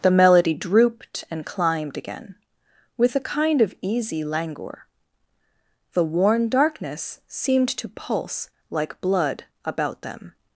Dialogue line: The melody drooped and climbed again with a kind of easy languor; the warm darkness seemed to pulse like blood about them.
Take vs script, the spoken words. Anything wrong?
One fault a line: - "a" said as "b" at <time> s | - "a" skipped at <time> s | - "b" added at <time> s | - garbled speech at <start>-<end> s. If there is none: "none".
- "warm" said as "worn" at 6.0 s